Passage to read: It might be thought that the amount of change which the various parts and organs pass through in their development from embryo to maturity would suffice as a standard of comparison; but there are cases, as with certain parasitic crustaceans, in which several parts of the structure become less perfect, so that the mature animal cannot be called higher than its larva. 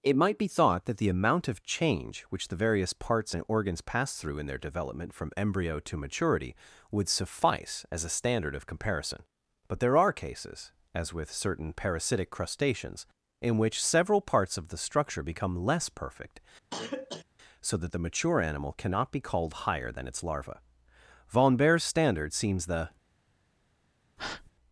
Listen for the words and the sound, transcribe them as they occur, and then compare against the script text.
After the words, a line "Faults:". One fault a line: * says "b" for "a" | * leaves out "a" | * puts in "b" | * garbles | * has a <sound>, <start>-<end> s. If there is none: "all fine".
It might be thought that the amount of change which the various parts and organs pass through in their development from embryo to maturity would suffice as a standard of comparison; but there are cases, as with certain parasitic crustaceans, in which several parts of the structure become less perfect, so that the mature animal cannot be called higher than its larva. Von Baer's standard seems the
Faults:
* has a cough, 16.7-17.3 s
* puts in "Von Baer's standard seems the"
* has a breath, 24.2-24.5 s